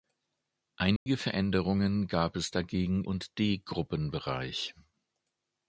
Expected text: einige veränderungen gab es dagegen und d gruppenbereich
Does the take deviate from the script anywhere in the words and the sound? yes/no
yes